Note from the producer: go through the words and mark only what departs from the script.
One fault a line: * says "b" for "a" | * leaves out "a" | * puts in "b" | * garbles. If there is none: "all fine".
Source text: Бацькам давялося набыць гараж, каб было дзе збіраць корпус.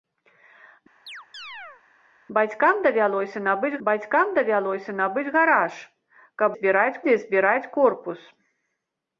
* puts in "бацькам давялося набыць"
* says "збіраць" for "было"